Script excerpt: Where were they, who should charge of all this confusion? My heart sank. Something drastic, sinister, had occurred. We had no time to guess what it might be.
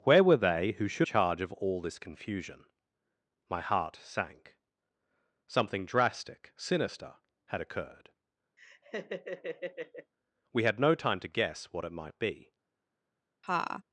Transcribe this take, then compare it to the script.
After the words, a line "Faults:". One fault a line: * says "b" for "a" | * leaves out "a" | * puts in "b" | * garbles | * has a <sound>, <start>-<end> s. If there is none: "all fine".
Where were they, who should charge of all this confusion? My heart sank. Something drastic, sinister, had occurred. We had no time to guess what it might be.
Faults:
* has a laugh, 8.6-10.1 s
* has a laugh, 13.4-13.8 s